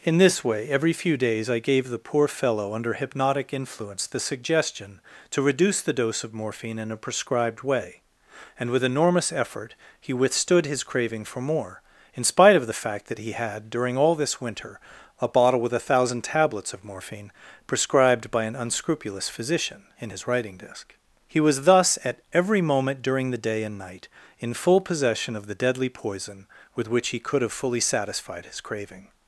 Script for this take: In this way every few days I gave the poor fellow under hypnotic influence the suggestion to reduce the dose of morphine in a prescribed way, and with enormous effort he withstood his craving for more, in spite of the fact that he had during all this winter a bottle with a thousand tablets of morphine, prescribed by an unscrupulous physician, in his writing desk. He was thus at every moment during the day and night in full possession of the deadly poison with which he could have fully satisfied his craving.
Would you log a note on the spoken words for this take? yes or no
no